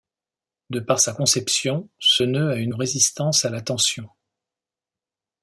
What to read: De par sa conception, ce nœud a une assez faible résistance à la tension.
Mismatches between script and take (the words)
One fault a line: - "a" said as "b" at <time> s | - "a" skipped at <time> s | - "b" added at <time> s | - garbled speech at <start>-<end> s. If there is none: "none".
- "assez faible" skipped at 2.7 s